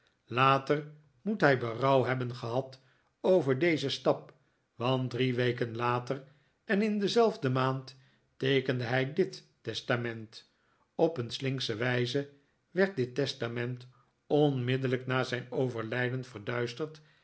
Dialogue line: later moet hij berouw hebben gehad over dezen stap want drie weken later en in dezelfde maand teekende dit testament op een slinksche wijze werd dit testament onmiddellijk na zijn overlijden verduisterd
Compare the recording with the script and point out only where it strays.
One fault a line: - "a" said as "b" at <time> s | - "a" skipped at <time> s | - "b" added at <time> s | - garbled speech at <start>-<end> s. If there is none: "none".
- "hij" added at 8.8 s